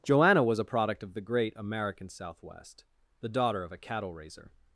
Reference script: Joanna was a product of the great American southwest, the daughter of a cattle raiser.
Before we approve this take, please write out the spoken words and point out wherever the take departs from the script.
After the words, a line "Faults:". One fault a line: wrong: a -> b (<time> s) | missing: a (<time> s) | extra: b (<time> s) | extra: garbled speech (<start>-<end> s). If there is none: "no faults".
Joanna was a product of the great American southwest, the daughter of a cattle raiser.
Faults:
no faults